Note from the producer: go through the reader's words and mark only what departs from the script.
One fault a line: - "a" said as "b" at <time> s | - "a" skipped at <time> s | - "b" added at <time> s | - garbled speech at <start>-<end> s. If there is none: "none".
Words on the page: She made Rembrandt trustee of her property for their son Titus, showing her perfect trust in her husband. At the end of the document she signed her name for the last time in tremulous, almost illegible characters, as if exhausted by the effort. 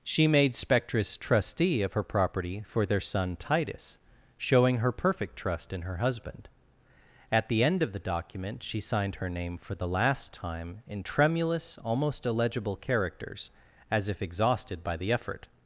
- "Rembrandt" said as "Spectris" at 0.5 s